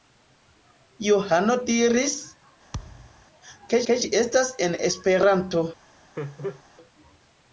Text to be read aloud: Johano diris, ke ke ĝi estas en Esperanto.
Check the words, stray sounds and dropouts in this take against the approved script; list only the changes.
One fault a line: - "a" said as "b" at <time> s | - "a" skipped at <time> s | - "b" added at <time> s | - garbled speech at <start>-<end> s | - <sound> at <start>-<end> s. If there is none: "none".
- thud at 2.7-3.2 s
- laugh at 6.2-6.6 s